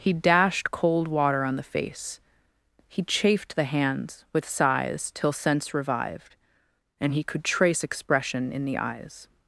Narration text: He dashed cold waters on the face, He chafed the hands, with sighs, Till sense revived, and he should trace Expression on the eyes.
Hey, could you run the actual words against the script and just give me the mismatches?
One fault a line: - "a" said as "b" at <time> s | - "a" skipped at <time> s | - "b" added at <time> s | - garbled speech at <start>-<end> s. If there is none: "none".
- "waters" said as "water" at 1.1 s
- "should" said as "could" at 7.2 s
- "on" said as "in" at 8.5 s